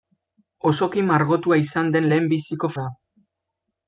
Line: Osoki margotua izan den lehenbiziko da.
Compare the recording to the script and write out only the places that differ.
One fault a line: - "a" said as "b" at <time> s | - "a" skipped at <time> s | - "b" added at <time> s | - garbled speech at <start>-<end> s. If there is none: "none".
none